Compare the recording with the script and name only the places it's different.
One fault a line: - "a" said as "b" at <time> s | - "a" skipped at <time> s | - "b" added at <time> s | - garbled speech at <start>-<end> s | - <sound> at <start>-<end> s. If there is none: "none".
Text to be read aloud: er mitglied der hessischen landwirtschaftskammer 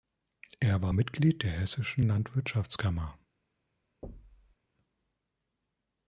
- "war" added at 0.8 s
- thud at 4.0-4.6 s